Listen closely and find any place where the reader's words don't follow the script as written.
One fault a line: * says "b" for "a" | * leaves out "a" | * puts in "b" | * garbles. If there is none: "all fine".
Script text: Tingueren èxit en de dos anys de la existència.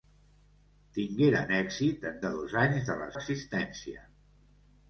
all fine